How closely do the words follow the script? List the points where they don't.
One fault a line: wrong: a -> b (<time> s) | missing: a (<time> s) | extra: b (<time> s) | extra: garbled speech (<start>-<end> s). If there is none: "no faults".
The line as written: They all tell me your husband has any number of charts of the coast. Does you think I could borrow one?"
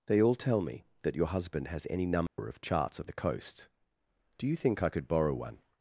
extra: that (1.0 s)
wrong: Does -> Do (4.4 s)